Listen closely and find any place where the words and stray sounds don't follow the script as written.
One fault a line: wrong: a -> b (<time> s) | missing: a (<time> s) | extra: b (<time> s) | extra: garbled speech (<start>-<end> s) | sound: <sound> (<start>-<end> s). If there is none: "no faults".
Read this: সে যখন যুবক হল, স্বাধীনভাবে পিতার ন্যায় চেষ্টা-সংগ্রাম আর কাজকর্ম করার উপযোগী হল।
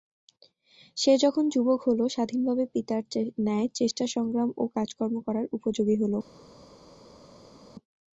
wrong: আর -> ও (4.6 s)